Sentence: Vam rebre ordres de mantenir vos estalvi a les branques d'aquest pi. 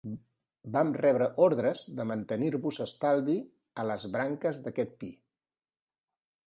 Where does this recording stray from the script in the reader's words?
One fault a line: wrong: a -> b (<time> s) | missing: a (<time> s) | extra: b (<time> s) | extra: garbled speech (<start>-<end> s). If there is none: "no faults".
no faults